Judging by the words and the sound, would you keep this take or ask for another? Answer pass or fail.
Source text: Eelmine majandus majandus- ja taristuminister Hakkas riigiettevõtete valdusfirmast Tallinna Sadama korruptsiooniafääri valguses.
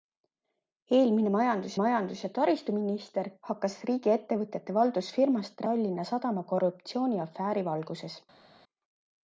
pass